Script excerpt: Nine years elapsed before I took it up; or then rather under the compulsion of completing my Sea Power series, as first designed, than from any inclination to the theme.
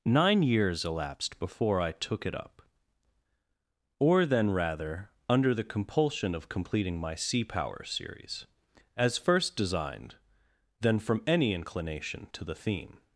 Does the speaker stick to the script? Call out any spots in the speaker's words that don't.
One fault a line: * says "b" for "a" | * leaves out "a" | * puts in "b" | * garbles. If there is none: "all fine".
all fine